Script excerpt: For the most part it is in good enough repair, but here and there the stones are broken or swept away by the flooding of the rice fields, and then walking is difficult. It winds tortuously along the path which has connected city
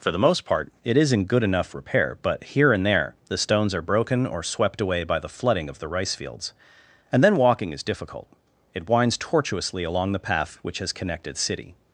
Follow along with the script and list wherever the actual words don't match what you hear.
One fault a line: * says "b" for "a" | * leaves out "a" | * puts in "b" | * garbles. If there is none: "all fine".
all fine